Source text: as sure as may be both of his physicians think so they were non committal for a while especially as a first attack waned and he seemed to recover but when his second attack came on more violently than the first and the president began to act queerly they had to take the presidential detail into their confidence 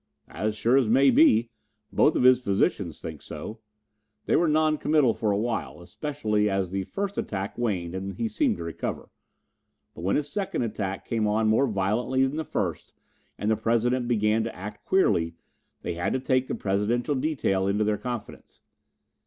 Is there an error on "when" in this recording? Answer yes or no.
no